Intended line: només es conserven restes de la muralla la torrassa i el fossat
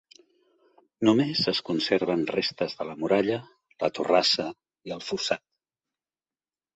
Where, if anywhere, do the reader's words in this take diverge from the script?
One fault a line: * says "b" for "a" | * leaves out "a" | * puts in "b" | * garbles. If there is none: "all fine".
all fine